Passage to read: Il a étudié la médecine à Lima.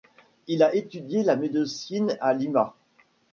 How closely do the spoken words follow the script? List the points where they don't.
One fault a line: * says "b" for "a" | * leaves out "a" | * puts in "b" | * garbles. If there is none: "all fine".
all fine